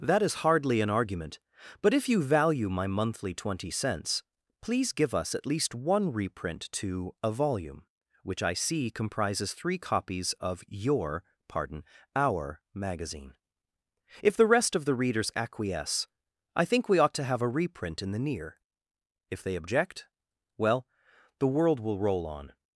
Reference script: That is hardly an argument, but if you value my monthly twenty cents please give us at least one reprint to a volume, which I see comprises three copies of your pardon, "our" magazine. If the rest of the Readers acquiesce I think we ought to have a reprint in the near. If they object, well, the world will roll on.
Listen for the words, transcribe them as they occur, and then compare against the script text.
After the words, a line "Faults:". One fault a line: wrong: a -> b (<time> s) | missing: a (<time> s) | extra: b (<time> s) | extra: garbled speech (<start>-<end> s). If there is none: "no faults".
That is hardly an argument, but if you value my monthly twenty cents please give us at least one reprint to a volume, which I see comprises three copies of your pardon, "our" magazine. If the rest of the Readers acquiesce I think we ought to have a reprint in the near. If they object, well, the world will roll on.
Faults:
no faults